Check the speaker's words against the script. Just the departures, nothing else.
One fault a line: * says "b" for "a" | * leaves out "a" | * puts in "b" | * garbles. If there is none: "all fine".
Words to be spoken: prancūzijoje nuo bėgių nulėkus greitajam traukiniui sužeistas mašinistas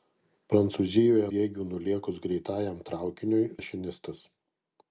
* leaves out "nuo"
* leaves out "sužeistas"